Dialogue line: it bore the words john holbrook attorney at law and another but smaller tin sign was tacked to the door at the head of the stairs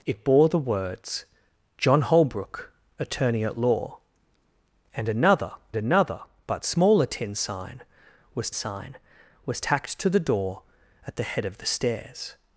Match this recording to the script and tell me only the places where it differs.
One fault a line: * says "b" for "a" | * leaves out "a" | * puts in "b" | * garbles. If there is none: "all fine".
* puts in "another"
* puts in "sign was"